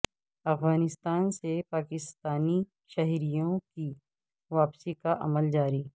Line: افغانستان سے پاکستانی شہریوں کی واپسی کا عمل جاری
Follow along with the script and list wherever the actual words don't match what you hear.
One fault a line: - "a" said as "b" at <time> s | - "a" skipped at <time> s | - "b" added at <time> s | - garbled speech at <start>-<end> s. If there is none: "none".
none